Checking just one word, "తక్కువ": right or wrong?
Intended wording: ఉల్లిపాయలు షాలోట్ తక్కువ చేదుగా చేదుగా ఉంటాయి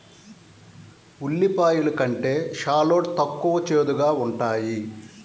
right